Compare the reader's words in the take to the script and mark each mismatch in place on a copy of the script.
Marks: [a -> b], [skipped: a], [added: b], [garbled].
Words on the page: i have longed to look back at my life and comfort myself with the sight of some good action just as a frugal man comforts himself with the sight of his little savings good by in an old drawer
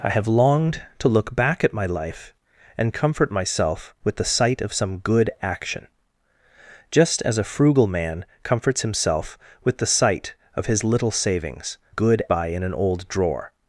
i have longed to look back at my life and comfort myself with the sight of some good action just as a frugal man comforts himself with the sight of his little savings good by in an old drawer